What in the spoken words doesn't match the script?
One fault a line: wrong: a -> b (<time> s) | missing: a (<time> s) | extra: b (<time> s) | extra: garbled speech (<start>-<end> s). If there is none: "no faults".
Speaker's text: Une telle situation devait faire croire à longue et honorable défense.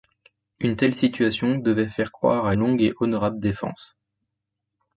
no faults